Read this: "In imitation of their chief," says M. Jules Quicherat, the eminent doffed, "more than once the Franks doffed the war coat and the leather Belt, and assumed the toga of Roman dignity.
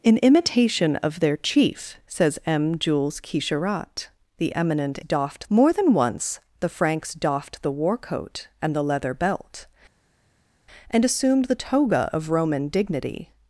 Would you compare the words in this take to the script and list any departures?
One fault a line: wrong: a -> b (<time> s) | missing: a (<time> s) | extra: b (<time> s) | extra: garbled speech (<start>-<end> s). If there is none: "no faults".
no faults